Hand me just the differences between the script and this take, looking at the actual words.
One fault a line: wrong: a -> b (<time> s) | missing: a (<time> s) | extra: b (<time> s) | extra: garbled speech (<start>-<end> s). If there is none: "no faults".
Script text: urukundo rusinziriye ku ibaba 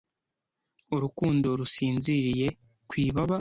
no faults